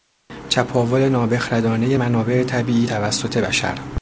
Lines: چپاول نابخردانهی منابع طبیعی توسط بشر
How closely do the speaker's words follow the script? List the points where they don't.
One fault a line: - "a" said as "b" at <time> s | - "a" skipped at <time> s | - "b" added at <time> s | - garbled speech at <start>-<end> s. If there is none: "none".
none